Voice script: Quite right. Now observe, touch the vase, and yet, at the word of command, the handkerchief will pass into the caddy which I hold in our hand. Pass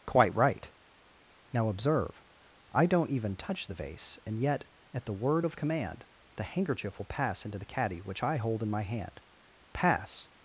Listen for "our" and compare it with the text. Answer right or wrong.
wrong